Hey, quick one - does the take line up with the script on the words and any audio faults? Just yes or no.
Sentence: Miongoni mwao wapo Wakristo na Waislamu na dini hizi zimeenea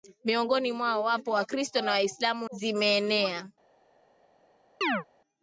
no